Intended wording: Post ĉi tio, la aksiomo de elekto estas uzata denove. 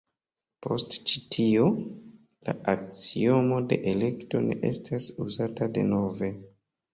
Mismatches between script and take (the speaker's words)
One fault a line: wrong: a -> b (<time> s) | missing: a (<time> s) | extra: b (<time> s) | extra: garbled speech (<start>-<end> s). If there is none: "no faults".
extra: ne (4.5 s)